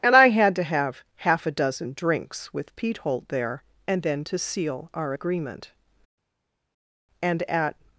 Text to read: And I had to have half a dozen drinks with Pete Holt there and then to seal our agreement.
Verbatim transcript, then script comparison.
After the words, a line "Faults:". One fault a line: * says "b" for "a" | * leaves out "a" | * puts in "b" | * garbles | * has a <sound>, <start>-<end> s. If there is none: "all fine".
And I had to have half a dozen drinks with Pete Holt there and then to seal our agreement. And at
Faults:
* puts in "And at"